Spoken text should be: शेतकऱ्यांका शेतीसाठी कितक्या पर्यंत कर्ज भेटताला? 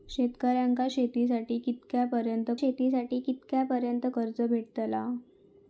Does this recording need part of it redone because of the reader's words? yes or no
yes